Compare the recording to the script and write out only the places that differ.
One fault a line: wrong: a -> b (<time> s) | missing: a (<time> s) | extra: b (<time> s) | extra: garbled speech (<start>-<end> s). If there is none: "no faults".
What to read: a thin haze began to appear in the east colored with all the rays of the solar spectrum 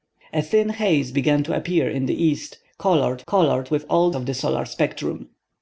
extra: colored (3.3 s)
missing: the rays (4.1 s)